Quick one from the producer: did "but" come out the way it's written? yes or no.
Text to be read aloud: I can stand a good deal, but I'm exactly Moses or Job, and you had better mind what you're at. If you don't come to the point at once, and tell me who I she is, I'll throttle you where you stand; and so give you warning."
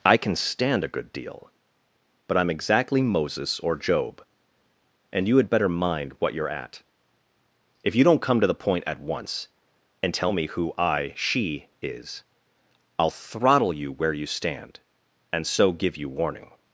yes